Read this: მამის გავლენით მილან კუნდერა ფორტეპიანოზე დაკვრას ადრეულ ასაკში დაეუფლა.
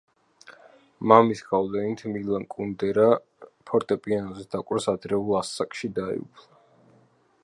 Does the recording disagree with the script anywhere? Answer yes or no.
no